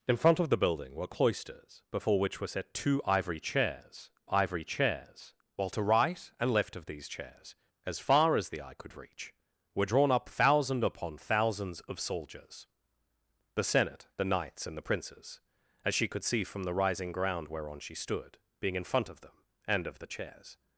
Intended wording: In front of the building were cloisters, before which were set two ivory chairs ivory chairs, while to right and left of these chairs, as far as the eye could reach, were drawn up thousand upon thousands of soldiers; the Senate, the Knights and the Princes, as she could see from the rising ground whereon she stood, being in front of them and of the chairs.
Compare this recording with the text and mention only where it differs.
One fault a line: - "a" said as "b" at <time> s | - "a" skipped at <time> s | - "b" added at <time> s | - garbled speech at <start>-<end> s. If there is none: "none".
none